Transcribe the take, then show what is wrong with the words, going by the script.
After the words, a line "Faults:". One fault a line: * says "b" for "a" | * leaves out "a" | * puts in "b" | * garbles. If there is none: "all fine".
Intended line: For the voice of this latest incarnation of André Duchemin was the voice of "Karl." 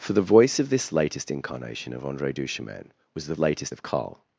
For the voice of this latest incarnation of André Duchemin was the latest of "Karl."
Faults:
* says "latest" for "voice"